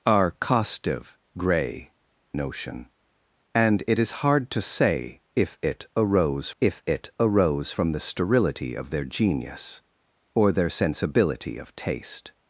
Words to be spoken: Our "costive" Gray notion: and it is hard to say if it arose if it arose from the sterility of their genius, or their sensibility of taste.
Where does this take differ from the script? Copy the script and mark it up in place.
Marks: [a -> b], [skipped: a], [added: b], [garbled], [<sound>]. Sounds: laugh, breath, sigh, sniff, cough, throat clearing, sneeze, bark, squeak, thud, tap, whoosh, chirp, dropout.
Our "costive" Gray notion: and it is hard to say if it arose if it arose from the sterility of their genius, or their sensibility of taste.